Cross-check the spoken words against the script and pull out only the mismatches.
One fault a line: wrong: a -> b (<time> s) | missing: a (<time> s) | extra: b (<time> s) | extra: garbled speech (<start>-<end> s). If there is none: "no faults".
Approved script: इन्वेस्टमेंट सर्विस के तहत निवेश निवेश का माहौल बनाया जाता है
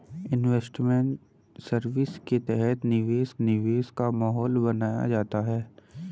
no faults